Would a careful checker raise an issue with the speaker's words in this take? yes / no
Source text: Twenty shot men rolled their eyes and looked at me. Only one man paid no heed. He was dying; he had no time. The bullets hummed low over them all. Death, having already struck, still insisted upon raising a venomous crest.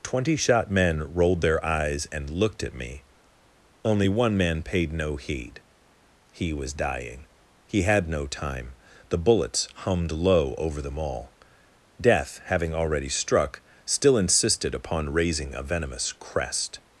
no